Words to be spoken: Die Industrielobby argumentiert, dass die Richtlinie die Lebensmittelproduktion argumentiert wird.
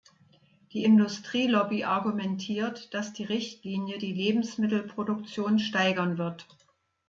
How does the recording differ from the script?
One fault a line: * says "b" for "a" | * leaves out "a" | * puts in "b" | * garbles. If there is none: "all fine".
* says "steigern" for "argumentiert"